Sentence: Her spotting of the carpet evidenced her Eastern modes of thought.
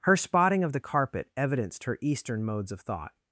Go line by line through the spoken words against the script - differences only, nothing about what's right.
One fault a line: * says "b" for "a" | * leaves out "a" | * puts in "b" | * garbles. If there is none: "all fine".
all fine